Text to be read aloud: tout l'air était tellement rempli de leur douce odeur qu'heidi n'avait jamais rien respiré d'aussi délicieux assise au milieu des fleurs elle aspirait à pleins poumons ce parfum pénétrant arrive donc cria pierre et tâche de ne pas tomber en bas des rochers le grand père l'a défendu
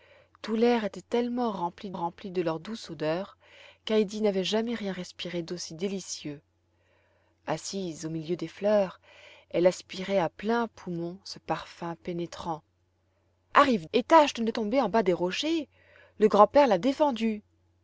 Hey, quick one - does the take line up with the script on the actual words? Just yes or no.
no